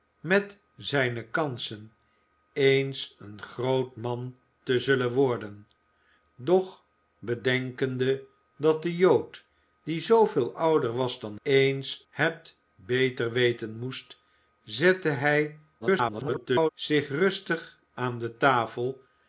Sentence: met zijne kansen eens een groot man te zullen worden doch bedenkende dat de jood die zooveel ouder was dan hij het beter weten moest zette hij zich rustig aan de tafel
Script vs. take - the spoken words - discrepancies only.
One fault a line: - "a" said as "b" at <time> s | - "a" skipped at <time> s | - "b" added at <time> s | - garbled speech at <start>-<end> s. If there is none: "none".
- "hij" said as "eens" at 11.4 s
- garbled speech at 15.8-16.7 s